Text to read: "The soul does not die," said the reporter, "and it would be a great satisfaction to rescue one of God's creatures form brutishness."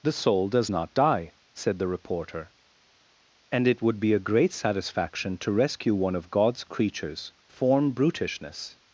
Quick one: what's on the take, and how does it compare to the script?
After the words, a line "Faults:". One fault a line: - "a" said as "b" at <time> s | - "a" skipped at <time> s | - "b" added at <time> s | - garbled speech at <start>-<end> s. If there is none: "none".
"The soul does not die," said the reporter, "and it would be a great satisfaction to rescue one of God's creatures form brutishness."
Faults:
none